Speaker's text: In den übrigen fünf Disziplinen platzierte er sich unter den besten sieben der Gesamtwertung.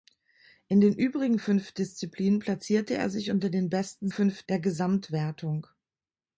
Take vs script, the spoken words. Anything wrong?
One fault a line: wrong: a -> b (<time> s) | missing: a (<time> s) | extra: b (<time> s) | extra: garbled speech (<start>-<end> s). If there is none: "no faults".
wrong: sieben -> fünf (4.1 s)